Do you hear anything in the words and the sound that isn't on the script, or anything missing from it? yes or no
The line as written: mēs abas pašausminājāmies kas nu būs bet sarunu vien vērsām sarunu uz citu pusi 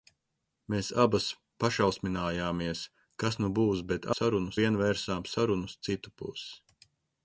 no